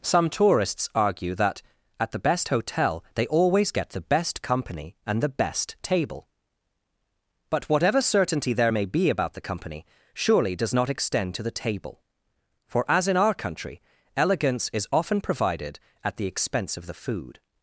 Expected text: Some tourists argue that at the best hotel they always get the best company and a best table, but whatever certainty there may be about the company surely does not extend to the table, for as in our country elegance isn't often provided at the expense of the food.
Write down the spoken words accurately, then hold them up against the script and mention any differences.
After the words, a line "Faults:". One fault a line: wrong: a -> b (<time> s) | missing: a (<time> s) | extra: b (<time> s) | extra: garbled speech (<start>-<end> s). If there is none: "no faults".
Some tourists argue that at the best hotel they always get the best company and the best table, but whatever certainty there may be about the company surely does not extend to the table, for as in our country elegance is often provided at the expense of the food.
Faults:
wrong: a -> the (5.2 s)
wrong: isn't -> is (14.7 s)